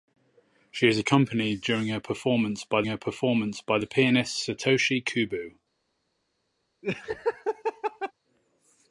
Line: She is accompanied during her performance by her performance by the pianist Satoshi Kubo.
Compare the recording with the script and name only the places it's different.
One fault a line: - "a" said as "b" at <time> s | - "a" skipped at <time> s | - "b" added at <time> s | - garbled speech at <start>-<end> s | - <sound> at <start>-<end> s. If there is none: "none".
- laugh at 6.8-8.1 s